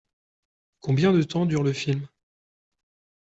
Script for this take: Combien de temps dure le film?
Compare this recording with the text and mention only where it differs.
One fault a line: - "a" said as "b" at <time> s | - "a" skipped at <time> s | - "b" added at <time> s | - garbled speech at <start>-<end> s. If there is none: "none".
none